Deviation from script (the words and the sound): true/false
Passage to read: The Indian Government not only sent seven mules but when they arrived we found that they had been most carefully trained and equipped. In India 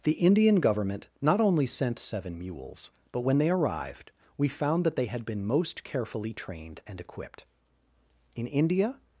false